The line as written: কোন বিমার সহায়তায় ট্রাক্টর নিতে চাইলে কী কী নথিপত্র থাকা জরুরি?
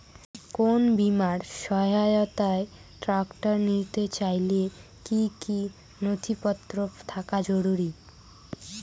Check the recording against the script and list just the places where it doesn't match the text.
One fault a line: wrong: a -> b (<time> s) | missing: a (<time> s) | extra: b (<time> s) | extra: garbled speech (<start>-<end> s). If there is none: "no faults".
no faults